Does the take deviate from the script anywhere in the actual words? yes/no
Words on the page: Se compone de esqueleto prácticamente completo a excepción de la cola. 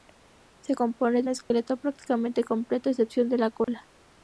no